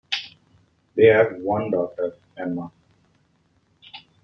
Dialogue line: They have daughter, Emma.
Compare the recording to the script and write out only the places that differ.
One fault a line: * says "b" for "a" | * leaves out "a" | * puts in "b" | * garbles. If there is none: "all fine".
* puts in "one"